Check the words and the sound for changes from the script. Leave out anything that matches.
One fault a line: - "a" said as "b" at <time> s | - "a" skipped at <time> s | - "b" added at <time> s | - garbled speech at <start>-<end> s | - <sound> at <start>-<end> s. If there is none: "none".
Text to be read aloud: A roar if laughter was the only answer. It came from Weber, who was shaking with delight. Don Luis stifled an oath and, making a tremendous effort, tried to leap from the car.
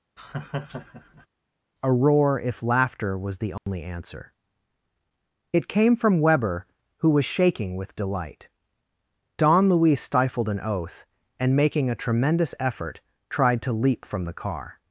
- laugh at 0.2-1.3 s
- dropout at 3.6-3.7 s